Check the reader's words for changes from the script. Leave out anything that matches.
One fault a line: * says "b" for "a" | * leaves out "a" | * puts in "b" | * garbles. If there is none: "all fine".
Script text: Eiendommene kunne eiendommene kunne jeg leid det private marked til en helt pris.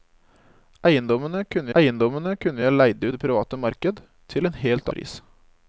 all fine